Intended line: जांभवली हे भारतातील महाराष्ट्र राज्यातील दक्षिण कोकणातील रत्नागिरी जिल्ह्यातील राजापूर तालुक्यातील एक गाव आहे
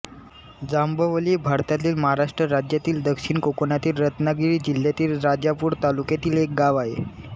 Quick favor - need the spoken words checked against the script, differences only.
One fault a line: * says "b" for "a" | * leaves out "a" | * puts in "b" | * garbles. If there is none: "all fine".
all fine